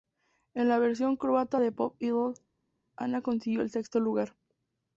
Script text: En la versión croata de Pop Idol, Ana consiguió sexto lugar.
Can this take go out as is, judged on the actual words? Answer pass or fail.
fail